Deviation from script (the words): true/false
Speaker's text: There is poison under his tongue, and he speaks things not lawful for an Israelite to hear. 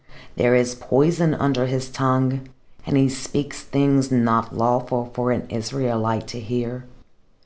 false